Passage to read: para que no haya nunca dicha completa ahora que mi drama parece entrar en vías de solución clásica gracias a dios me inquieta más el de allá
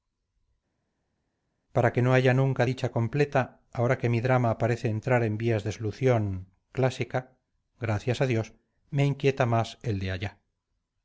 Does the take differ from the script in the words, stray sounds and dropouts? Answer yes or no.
no